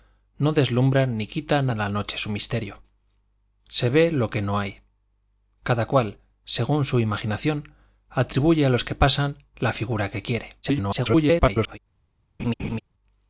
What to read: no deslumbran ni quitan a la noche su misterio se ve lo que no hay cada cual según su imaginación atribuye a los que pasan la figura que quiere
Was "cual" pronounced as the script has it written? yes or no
yes